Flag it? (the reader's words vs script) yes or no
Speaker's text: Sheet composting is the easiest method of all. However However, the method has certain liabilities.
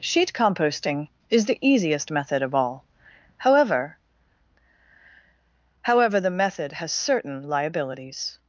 no